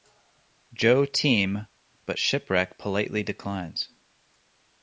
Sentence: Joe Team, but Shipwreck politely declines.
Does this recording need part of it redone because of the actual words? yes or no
no